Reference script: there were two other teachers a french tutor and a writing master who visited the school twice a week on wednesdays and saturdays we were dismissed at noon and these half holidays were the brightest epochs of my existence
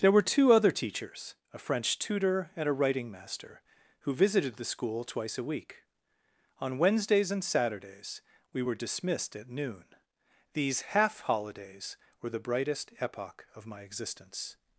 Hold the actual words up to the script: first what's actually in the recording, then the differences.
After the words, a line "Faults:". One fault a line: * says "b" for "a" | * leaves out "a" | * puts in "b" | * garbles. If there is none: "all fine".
there were two other teachers a french tutor and a writing master who visited the school twice a week on wednesdays and saturdays we were dismissed at noon these half holidays were the brightest epoch of my existence
Faults:
* leaves out "and"
* says "epoch" for "epochs"